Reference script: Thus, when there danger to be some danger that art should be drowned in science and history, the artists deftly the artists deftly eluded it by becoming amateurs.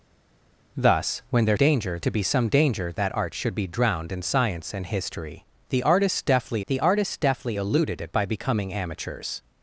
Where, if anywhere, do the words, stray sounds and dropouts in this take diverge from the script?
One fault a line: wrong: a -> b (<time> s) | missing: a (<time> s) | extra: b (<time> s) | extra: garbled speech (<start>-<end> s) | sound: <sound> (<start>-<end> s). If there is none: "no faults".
no faults